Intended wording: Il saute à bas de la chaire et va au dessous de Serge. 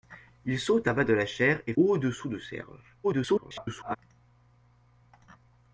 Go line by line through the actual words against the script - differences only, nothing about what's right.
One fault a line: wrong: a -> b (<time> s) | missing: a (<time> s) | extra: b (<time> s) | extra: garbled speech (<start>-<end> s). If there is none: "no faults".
missing: va (1.7 s)
extra: garbled speech (3.0-4.0 s)